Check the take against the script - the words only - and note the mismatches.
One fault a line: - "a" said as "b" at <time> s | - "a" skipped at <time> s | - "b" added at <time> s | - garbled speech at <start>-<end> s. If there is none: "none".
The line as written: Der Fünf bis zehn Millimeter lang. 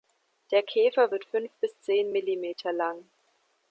- "Käfer wird" added at 0.6 s